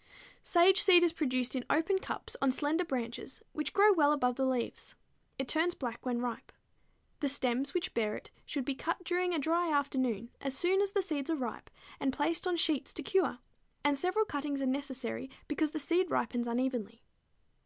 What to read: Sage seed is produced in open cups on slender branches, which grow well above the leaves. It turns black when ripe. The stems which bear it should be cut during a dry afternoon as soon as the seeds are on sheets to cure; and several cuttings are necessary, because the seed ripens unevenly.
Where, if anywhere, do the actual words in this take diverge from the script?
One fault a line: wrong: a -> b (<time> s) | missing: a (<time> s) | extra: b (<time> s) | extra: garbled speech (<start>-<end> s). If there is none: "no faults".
extra: ripe and placed (11.3 s)